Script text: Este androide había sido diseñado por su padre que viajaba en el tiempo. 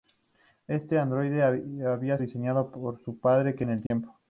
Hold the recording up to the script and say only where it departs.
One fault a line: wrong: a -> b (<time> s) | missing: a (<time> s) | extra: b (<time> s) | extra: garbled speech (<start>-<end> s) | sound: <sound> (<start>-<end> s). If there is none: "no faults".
missing: sido (2.2 s)
missing: viajaba (3.7 s)
sound: dropout (3.9-3.9 s)